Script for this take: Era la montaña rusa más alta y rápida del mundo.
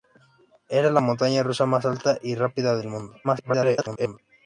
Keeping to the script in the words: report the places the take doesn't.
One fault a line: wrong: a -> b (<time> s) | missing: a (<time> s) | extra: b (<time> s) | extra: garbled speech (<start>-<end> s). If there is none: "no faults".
extra: garbled speech (3.2-4.2 s)